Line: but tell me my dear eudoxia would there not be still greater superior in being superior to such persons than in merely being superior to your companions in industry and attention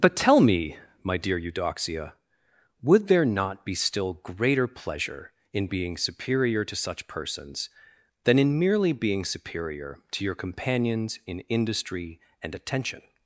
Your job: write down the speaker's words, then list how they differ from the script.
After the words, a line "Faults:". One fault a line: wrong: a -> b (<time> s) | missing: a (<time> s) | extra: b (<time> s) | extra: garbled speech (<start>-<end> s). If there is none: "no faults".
but tell me my dear eudoxia would there not be still greater pleasure in being superior to such persons than in merely being superior to your companions in industry and attention
Faults:
wrong: superior -> pleasure (4.7 s)